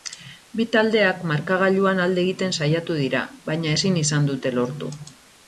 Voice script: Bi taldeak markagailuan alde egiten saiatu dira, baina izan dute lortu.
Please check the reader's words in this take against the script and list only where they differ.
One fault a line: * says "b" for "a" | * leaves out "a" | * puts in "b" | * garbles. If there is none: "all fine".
* puts in "ezin"